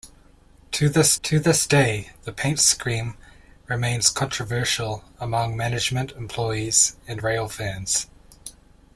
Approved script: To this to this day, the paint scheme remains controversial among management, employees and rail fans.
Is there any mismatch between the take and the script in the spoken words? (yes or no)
no